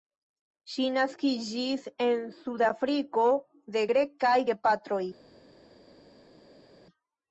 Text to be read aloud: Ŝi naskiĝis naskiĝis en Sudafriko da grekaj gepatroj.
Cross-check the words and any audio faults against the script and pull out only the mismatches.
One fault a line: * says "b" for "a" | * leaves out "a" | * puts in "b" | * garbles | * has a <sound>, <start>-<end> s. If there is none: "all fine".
* leaves out "naskiĝis"
* says "de" for "da"